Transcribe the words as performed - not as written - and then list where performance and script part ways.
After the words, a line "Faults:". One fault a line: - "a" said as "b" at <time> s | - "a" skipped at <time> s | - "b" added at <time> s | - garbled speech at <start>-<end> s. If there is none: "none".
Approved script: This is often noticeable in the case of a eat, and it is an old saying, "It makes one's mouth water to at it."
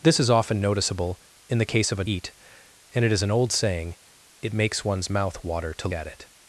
This is often noticeable in the case of a eat, and it is an old saying, "It makes one's mouth water to at it."
Faults:
none